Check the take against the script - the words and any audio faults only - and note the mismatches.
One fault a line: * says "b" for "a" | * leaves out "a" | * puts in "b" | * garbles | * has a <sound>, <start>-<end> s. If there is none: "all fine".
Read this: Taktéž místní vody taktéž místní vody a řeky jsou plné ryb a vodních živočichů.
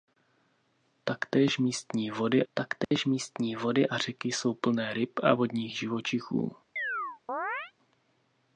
* has a dropout, 2.8-2.9 s
* has a chirp, 6.8-7.7 s